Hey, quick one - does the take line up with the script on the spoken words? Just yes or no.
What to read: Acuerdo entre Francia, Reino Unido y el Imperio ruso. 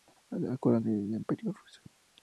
no